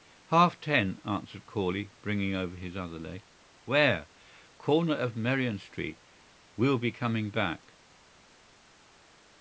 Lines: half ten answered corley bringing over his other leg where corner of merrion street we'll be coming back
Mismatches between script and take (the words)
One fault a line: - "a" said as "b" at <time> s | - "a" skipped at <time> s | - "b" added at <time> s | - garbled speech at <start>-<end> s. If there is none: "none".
none